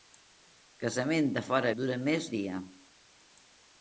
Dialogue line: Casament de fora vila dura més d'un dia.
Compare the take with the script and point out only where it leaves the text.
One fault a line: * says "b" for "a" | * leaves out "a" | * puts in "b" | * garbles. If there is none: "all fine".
* leaves out "vila"
* leaves out "d'un"